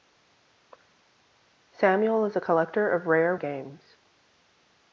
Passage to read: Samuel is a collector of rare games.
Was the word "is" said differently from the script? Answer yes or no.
no